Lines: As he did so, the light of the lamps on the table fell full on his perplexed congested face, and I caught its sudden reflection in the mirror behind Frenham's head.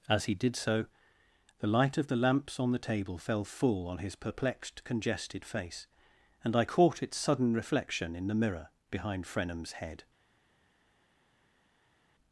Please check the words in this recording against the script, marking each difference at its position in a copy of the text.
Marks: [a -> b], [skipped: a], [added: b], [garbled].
As he did so, the light of the lamps on the table fell full on his perplexed congested face, and I caught its sudden reflection in the mirror behind Frenham's head.